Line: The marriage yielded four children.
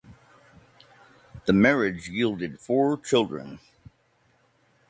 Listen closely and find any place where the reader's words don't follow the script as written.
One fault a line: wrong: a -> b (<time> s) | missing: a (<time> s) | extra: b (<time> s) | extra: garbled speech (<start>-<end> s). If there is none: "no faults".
no faults